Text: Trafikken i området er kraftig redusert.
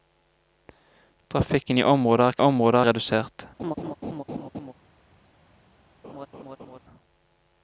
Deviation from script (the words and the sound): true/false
true